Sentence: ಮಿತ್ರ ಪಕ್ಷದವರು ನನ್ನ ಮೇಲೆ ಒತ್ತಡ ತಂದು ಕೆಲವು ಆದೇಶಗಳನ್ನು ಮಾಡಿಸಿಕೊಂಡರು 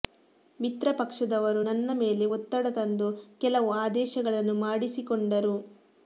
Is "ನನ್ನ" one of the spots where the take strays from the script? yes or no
no